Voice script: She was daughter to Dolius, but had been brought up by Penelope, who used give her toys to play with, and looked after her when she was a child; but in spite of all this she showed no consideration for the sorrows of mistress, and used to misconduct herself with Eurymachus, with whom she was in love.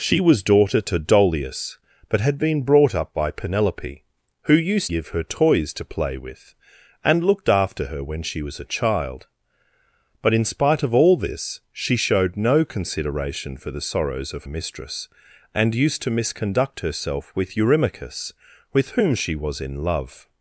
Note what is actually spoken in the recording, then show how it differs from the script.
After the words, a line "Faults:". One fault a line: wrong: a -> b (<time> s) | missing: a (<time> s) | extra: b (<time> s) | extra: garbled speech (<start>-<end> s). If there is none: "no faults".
She was daughter to Dolius, but had been brought up by Penelope, who used give her toys to play with, and looked after her when she was a child; but in spite of all this she showed no consideration for the sorrows of mistress, and used to misconduct herself with Eurymachus, with whom she was in love.
Faults:
no faults